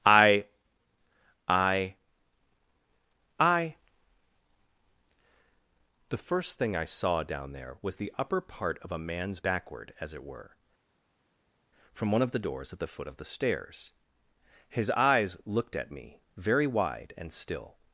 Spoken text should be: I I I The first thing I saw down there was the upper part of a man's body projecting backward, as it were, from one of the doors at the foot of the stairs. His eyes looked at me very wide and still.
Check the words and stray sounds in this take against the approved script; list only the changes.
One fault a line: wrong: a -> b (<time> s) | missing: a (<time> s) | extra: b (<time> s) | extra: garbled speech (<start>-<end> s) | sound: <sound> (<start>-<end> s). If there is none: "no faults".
missing: body projecting (9.4 s)